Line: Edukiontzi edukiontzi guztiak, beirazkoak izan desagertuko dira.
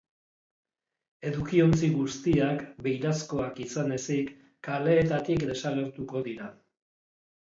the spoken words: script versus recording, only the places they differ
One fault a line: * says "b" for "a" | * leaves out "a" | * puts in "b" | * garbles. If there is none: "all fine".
* leaves out "edukiontzi"
* puts in "ezik kaleetatik"